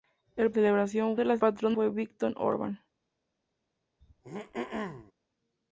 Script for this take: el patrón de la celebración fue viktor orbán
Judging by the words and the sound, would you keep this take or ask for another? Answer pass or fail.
fail